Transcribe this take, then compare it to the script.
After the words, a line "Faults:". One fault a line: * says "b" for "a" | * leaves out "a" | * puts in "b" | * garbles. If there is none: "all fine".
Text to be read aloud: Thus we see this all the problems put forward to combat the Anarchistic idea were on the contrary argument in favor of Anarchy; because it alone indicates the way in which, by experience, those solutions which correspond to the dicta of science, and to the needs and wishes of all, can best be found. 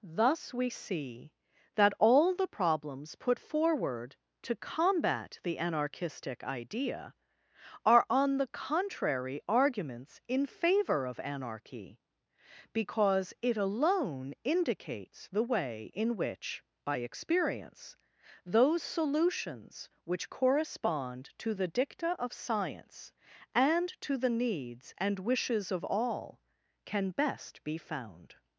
Thus we see that all the problems put forward to combat the Anarchistic idea are on the contrary arguments in favor of Anarchy; because it alone indicates the way in which, by experience, those solutions which correspond to the dicta of science, and to the needs and wishes of all, can best be found.
Faults:
* says "that" for "this"
* says "are" for "were"
* says "arguments" for "argument"